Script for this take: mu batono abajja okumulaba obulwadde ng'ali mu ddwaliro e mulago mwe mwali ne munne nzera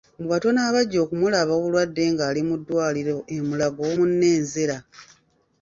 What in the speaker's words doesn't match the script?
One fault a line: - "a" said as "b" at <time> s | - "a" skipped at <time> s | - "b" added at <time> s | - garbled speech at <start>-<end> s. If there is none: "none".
- "mwe mwali ne" skipped at 3.8 s